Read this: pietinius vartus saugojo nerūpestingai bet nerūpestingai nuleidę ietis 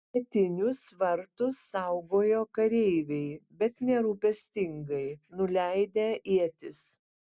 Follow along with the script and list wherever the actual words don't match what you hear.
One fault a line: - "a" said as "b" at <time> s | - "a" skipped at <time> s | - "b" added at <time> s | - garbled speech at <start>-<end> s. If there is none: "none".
- "nerūpestingai" said as "kareiviai" at 2.6 s